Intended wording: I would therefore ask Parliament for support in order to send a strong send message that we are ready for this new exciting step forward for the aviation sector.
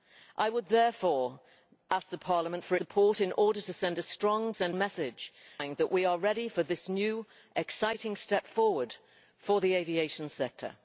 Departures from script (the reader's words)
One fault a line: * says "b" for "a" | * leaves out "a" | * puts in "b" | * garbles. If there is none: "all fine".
all fine